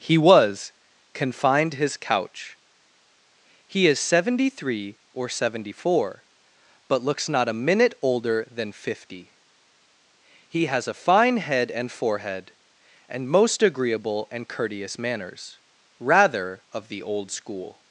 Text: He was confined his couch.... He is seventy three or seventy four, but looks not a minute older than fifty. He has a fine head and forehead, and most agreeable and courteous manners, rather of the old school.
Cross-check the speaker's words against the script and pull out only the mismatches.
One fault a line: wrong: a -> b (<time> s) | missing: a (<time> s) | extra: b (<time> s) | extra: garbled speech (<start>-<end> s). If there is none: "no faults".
no faults